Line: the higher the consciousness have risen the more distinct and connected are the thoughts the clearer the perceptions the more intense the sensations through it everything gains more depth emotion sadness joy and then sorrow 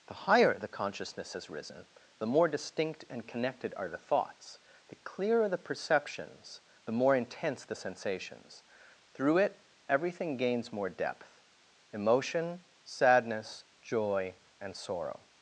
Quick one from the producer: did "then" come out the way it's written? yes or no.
no